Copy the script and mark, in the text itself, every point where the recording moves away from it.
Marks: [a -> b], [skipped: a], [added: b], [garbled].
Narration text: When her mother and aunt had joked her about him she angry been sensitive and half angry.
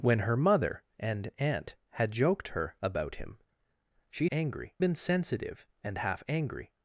When her mother and aunt had joked her about him she angry been sensitive and half angry.